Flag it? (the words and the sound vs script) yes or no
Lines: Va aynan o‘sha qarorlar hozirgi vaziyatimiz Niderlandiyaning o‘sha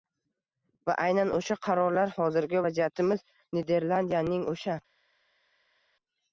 no